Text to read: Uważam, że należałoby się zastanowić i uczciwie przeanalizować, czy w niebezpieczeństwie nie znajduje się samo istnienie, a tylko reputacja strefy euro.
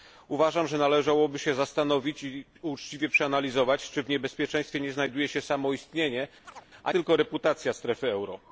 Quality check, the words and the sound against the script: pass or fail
fail